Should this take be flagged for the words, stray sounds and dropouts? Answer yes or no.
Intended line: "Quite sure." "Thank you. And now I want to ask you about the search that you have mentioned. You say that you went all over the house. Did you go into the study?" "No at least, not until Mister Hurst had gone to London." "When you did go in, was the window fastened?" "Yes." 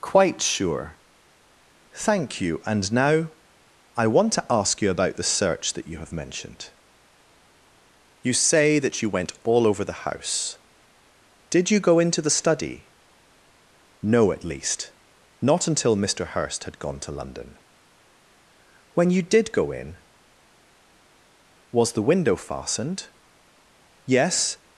no